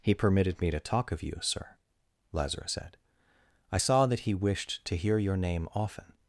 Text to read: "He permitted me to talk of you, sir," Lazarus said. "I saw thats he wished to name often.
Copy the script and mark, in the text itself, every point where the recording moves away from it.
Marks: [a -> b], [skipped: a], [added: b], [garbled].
"He permitted me to talk of you, sir," Lazarus said. "I saw [thats -> that] he wished to [added: hear your] name often.